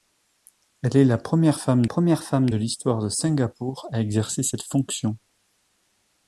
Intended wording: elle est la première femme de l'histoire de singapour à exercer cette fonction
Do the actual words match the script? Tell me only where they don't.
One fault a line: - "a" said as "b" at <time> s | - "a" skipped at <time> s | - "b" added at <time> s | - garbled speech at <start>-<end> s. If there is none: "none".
- "première femme" added at 1.8 s